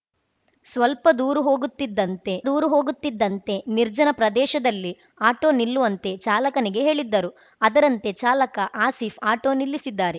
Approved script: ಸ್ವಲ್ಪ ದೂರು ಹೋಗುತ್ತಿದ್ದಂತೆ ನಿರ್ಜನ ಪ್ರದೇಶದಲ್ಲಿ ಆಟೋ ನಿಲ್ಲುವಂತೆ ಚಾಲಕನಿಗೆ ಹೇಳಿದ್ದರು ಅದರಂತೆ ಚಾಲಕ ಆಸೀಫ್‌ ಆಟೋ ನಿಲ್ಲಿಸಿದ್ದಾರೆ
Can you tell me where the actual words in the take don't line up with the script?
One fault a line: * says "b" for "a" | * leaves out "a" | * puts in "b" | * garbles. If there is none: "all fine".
* puts in "ದೂರು ಹೋಗುತ್ತಿದ್ದಂತೆ"